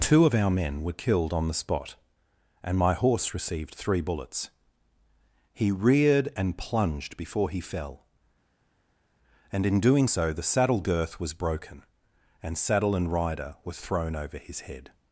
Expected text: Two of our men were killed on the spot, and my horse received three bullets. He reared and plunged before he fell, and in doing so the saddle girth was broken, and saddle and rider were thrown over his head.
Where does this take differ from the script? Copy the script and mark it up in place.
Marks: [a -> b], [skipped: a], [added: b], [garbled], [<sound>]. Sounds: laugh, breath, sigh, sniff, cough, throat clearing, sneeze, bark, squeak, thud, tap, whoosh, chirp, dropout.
Two of our men were killed on the spot, and my horse received three bullets. He reared and plunged before he fell, and in doing so the saddle girth was broken, and saddle and rider were thrown over his head.